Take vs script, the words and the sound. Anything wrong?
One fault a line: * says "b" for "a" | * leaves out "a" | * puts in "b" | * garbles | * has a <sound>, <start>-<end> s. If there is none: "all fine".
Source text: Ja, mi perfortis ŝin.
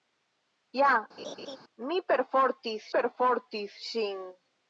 * has a laugh, 1.2-1.6 s
* puts in "perfortis"